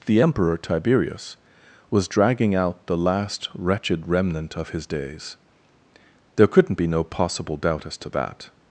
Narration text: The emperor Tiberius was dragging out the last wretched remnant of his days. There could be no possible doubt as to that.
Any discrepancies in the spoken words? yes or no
yes